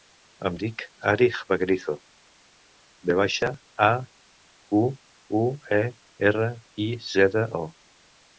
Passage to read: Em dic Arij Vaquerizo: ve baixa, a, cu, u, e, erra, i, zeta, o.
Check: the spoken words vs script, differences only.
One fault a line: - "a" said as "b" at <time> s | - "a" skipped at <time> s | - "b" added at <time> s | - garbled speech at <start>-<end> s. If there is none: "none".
none